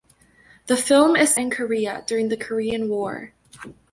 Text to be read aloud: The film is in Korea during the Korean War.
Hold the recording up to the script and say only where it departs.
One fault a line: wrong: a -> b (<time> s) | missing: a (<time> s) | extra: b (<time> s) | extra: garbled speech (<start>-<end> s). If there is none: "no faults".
no faults